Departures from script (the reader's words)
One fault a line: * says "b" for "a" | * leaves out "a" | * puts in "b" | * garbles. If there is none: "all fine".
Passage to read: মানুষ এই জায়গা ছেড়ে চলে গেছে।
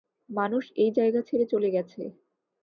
all fine